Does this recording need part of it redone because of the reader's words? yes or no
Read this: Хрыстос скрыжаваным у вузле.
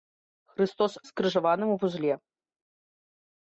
no